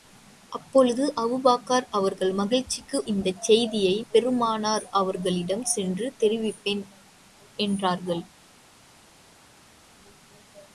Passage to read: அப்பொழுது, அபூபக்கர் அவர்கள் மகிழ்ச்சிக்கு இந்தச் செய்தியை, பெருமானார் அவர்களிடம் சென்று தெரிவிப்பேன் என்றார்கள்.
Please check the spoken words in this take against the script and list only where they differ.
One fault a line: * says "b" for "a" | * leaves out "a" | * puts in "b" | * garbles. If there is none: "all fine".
all fine